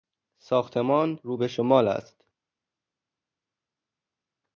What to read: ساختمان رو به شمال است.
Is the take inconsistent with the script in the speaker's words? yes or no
no